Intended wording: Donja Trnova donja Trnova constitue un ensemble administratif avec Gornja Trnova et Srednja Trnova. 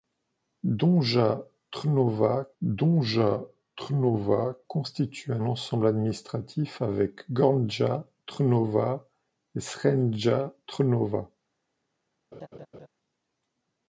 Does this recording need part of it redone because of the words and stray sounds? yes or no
yes